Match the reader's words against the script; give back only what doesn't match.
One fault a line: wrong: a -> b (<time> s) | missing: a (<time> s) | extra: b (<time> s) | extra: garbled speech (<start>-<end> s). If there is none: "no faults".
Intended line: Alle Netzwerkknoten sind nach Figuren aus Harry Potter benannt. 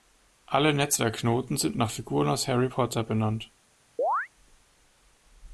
no faults